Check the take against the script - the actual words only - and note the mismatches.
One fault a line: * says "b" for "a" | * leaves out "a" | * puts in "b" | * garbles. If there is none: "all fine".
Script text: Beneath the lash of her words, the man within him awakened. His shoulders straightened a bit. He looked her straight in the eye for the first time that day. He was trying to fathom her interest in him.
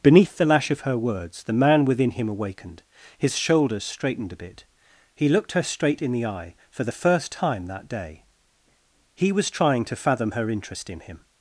all fine